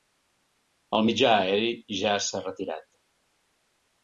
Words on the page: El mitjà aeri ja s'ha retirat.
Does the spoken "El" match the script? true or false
true